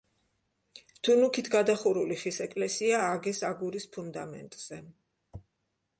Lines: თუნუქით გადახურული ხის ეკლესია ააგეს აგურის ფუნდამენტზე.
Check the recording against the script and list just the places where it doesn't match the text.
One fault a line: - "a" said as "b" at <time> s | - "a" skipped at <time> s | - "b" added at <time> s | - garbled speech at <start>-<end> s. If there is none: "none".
none